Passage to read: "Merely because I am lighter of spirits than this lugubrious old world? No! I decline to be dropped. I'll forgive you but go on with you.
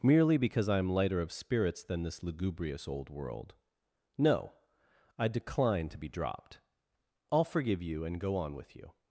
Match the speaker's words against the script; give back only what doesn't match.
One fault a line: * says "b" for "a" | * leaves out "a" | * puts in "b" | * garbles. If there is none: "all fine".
* says "and" for "but"